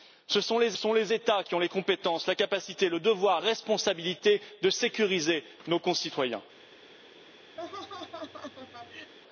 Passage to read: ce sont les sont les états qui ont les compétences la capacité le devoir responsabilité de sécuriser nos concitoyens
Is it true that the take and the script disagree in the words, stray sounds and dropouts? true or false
true